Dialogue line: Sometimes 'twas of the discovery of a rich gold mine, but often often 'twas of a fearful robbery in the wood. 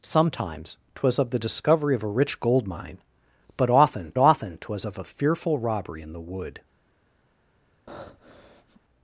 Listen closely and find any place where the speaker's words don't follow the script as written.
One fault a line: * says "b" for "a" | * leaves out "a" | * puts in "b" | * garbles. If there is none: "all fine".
all fine